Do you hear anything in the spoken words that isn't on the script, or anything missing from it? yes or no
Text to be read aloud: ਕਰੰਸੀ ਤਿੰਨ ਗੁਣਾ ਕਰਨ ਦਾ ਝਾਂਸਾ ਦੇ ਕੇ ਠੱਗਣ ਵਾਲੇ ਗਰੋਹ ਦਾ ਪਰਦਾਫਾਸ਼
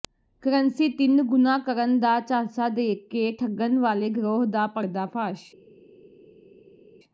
no